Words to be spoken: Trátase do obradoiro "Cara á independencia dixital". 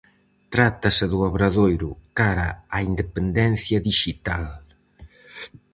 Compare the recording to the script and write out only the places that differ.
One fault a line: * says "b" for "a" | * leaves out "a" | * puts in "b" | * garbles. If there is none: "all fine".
all fine